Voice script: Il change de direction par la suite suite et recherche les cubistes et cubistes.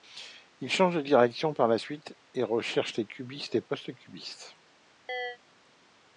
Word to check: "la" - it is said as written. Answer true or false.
true